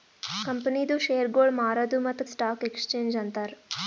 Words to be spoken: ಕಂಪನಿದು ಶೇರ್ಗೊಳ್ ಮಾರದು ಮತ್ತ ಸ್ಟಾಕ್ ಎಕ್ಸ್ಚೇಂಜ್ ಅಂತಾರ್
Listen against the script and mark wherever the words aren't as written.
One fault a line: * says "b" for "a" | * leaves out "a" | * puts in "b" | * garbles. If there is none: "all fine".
all fine